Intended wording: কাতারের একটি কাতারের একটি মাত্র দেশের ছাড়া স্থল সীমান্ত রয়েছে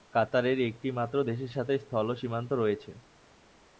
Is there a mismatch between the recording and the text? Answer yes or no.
yes